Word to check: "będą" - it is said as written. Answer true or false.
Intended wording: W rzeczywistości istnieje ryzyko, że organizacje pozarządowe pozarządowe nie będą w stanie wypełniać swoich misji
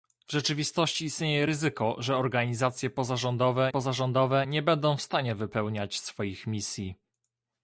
true